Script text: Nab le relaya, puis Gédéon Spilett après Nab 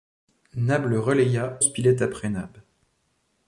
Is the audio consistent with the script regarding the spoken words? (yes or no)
no